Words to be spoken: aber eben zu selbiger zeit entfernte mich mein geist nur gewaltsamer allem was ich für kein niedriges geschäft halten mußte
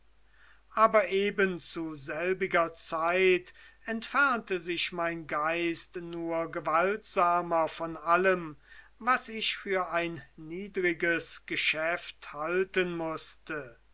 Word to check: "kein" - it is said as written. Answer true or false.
false